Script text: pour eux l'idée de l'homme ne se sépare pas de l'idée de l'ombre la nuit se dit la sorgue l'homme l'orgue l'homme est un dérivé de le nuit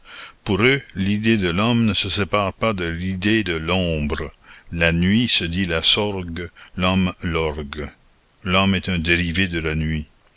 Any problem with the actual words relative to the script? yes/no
yes